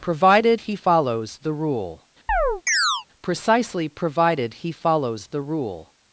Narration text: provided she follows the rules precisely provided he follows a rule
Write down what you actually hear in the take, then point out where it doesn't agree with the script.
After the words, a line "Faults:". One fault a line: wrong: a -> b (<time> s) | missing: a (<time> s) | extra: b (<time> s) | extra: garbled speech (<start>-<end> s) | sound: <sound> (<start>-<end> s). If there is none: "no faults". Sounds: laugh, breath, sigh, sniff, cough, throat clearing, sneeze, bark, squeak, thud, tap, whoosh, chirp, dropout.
provided he follows the rule precisely provided he follows the rule
Faults:
wrong: she -> he (0.6 s)
wrong: rules -> rule (1.5 s)
sound: chirp (2.3-3.1 s)
wrong: a -> the (5.3 s)